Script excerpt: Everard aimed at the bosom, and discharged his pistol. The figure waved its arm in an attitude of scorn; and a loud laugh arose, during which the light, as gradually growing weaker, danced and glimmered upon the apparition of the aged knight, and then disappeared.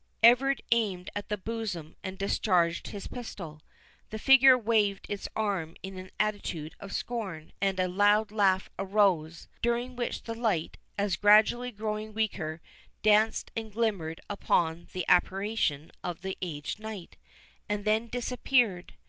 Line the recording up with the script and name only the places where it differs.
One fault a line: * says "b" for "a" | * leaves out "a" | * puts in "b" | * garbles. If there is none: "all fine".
all fine